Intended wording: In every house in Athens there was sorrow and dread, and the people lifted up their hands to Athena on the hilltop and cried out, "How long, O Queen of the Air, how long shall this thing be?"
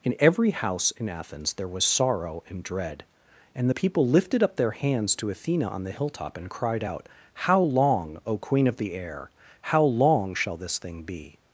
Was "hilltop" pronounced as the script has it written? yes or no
yes